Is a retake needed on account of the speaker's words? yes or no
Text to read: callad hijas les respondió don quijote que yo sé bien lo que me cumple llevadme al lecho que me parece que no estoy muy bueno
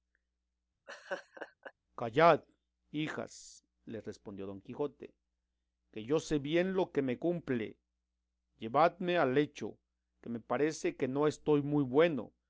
no